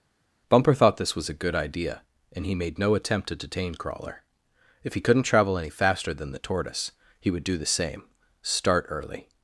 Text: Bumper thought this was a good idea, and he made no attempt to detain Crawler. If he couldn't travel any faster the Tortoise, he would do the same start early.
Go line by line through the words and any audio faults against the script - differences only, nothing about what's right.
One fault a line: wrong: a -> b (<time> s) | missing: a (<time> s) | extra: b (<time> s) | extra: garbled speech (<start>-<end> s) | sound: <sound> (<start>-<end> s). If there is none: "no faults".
extra: than (6.1 s)